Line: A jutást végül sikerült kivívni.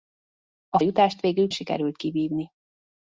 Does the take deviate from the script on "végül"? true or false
false